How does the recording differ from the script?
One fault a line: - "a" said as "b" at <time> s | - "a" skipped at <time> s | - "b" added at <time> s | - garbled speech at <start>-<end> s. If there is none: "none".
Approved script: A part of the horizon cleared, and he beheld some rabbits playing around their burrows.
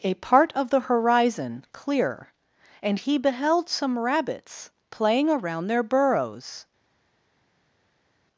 - "cleared" said as "clear" at 1.7 s